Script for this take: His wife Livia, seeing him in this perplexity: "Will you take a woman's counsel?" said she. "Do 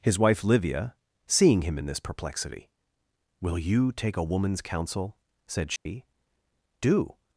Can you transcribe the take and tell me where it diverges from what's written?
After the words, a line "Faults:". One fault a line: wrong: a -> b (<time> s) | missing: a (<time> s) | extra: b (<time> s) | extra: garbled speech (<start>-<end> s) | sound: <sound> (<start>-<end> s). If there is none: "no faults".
His wife Livia, seeing him in this perplexity: "Will you take a woman's counsel?" said she. "Do
Faults:
sound: dropout (5.8-5.9 s)